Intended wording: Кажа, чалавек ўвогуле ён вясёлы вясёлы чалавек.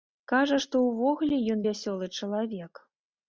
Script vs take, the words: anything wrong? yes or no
yes